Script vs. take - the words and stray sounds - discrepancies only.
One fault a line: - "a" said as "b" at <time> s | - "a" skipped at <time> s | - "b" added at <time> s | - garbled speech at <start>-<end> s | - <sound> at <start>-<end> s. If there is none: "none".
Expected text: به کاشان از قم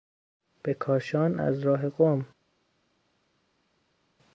- "راه" added at 1.6 s